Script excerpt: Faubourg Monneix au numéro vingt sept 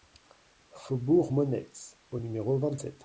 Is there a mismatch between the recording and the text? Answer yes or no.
no